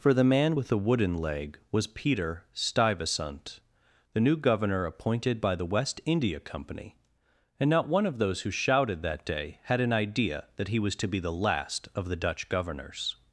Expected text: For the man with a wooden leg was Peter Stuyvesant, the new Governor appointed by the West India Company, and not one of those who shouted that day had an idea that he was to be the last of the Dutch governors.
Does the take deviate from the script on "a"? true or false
true